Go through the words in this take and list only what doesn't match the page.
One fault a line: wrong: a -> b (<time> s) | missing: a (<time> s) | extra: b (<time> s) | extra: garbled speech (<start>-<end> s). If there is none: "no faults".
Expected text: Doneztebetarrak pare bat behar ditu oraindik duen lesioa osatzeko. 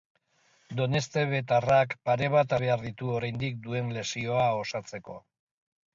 no faults